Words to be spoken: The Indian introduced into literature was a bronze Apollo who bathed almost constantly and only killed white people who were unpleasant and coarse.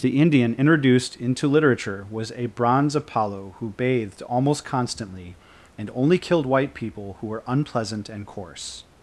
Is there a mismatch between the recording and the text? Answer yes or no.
no